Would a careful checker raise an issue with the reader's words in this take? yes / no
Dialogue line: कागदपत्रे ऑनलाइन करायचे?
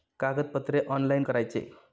no